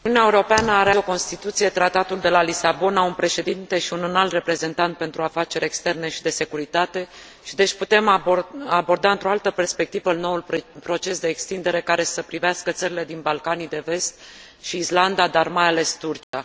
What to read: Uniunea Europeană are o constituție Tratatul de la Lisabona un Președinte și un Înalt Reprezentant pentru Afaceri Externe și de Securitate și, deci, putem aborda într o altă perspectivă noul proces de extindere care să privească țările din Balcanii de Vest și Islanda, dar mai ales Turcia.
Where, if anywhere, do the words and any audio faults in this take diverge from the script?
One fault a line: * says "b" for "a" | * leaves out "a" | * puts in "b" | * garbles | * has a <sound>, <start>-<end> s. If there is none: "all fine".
* has a dropout, 16.2-16.3 s